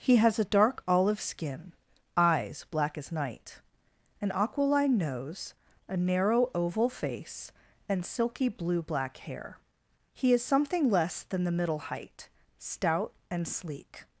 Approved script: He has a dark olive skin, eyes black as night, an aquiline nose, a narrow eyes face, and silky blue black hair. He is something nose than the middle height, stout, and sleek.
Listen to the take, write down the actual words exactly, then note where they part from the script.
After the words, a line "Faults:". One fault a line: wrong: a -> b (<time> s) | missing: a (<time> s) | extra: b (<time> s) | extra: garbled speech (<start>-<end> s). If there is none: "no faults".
He has a dark olive skin, eyes black as night, an aquiline nose, a narrow oval face, and silky blue black hair. He is something less than the middle height, stout, and sleek.
Faults:
wrong: eyes -> oval (6.5 s)
wrong: nose -> less (10.9 s)